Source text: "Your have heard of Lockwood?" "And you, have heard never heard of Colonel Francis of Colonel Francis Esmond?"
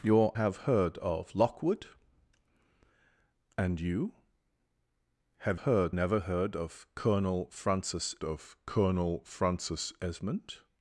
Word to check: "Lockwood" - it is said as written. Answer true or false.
true